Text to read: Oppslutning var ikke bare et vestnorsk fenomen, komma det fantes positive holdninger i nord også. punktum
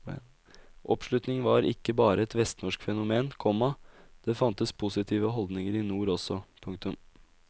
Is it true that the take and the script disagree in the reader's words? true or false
false